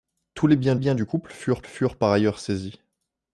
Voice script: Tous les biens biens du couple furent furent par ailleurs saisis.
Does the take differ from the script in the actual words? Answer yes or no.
no